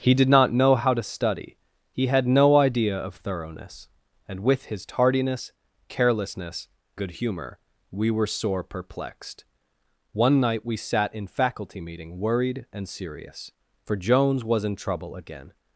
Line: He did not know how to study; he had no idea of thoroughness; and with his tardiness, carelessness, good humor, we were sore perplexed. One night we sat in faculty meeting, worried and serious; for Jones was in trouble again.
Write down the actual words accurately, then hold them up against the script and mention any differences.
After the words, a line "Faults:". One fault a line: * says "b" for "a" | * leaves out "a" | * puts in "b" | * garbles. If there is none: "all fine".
He did not know how to study; he had no idea of thoroughness; and with his tardiness, carelessness, good humor, we were sore perplexed. One night we sat in faculty meeting, worried and serious; for Jones was in trouble again.
Faults:
all fine